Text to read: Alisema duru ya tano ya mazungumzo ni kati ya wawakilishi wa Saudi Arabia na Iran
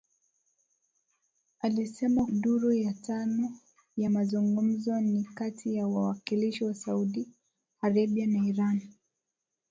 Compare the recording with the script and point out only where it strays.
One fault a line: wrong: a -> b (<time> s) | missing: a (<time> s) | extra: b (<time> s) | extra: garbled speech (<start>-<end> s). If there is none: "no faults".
no faults